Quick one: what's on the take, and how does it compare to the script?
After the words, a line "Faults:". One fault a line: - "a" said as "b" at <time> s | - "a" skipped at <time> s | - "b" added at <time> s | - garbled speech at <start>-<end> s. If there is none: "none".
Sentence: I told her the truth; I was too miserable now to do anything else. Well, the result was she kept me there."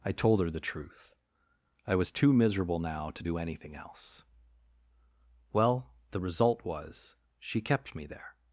I told her the truth; I was too miserable now to do anything else. Well, the result was she kept me there."
Faults:
none